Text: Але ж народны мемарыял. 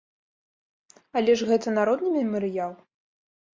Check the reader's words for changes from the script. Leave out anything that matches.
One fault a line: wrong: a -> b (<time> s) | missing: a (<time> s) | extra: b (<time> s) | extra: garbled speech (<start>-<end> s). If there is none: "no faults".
extra: гэта (1.5 s)